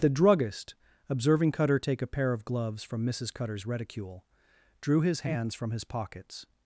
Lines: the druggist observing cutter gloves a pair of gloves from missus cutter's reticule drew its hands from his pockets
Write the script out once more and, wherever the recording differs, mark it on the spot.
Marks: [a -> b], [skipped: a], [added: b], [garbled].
the druggist observing cutter [gloves -> take] a pair of gloves from missus cutter's reticule drew [its -> his] hands from his pockets